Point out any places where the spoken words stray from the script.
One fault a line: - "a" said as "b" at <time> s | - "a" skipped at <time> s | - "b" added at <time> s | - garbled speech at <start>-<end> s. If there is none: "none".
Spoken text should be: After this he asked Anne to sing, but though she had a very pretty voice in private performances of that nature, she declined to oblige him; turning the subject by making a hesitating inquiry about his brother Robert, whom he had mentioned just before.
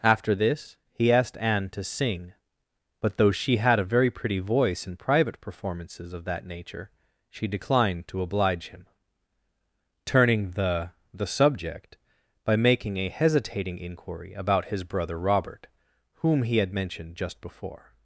- "the" added at 11.1 s